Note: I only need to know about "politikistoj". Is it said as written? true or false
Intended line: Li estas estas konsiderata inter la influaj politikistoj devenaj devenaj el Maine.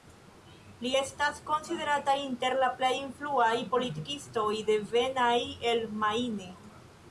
true